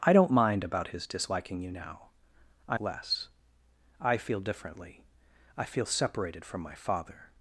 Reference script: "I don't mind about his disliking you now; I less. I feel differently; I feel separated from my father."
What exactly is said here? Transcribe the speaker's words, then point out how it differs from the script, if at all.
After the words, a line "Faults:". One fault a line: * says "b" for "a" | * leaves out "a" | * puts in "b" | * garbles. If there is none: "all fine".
"I don't mind about his disliking you now; I less. I feel differently; I feel separated from my father."
Faults:
all fine